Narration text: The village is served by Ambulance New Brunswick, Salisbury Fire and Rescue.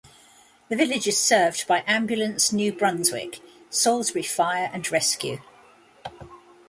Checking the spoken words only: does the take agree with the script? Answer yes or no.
yes